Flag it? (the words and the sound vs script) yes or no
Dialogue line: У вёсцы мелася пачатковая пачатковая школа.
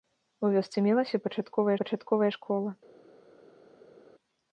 no